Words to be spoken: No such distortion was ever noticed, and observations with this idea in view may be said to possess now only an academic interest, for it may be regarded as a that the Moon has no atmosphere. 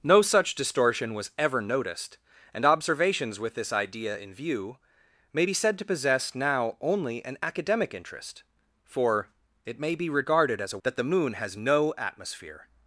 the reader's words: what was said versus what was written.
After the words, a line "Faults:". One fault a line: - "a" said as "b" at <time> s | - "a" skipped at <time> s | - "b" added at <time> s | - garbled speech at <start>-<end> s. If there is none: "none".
No such distortion was ever noticed, and observations with this idea in view may be said to possess now only an academic interest, for it may be regarded as a that the Moon has no atmosphere.
Faults:
none